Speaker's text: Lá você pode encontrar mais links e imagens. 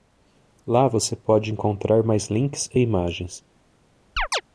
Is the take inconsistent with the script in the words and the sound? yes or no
yes